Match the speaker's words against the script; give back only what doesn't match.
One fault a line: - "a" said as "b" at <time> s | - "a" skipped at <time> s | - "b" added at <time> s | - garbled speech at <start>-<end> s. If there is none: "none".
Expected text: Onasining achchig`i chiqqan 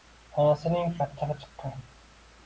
none